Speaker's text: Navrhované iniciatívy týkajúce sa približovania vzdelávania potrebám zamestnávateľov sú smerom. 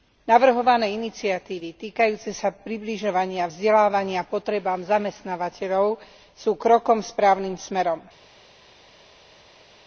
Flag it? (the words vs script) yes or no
yes